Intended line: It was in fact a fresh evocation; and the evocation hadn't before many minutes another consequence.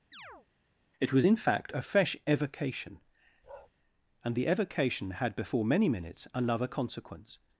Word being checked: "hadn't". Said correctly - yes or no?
no